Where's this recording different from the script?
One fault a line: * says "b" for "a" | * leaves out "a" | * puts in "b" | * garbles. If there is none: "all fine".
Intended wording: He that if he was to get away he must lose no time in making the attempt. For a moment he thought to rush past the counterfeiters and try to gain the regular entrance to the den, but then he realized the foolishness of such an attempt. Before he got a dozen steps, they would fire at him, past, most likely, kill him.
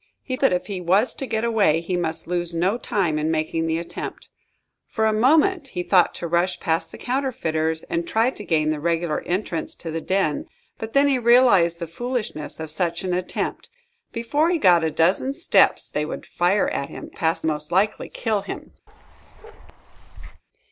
all fine